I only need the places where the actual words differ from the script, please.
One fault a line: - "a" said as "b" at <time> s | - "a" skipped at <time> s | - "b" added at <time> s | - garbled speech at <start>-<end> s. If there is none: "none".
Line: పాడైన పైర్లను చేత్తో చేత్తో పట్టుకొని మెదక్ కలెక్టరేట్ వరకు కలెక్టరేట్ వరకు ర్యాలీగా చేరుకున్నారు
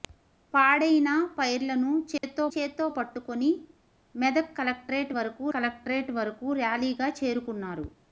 none